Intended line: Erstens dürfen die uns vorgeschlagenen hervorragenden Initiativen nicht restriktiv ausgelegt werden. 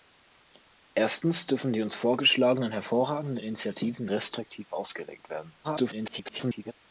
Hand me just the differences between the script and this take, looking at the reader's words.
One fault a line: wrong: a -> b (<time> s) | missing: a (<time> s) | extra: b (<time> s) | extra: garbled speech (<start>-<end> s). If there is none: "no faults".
missing: nicht (4.1 s)
extra: garbled speech (5.6-6.7 s)